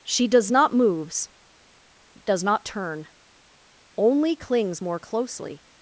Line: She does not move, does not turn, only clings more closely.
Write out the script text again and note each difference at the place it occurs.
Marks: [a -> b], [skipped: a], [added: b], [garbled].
She does not [move, -> moves] does not turn, only clings more closely.